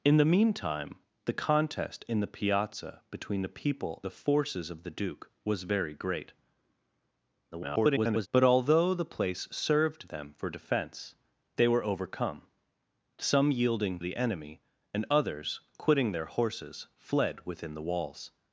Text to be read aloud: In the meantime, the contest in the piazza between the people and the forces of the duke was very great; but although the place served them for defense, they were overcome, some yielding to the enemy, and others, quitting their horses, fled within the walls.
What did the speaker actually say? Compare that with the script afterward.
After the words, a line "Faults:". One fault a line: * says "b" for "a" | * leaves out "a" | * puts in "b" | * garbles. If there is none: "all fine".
In the meantime, the contest in the piazza between the people the forces of the duke was very great; [garbled] but although the place served them for defense, they were overcome, some yielding the enemy, and others, quitting their horses, fled within the walls.
Faults:
* leaves out "and"
* garbles
* leaves out "to"